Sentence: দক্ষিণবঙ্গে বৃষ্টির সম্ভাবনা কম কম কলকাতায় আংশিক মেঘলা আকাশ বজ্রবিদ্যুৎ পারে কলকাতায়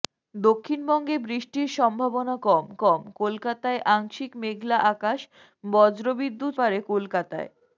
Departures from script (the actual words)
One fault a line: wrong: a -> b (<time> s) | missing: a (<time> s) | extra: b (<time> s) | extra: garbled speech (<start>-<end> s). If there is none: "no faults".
no faults